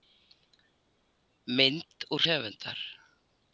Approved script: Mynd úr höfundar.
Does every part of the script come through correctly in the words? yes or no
yes